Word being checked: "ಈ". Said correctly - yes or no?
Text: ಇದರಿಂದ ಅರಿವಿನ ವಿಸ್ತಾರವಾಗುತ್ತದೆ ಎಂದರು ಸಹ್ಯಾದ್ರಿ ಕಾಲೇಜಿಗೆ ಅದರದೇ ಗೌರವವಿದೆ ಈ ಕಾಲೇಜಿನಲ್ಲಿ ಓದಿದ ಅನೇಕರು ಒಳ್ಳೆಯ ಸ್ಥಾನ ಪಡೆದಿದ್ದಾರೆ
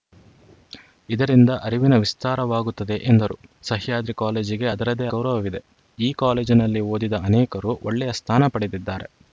yes